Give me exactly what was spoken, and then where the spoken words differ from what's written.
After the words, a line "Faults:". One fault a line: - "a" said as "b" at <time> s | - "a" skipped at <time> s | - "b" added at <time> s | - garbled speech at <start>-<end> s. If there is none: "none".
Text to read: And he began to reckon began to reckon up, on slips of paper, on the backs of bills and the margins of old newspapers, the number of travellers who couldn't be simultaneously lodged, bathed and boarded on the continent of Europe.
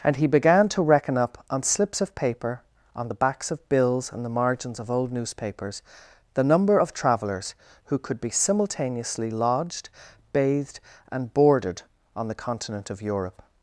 And he began to reckon up, on slips of paper, on the backs of bills and the margins of old newspapers, the number of travellers who could be simultaneously lodged, bathed and boarded on the continent of Europe.
Faults:
- "began to reckon" skipped at 1.2 s
- "couldn't" said as "could" at 8.0 s